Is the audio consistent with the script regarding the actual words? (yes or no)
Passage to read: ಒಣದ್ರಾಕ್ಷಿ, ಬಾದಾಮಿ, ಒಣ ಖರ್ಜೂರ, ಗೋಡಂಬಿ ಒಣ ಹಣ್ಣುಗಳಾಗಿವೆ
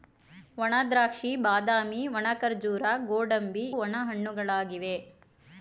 yes